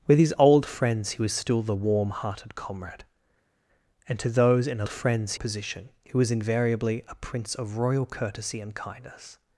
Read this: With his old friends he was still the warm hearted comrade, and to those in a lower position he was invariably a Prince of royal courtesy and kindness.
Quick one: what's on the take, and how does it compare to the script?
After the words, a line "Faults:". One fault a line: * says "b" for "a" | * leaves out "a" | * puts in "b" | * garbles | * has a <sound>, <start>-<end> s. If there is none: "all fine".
With his old friends he was still the warm hearted comrade, and to those in a friends position he was invariably a Prince of royal courtesy and kindness.
Faults:
* says "friends" for "lower"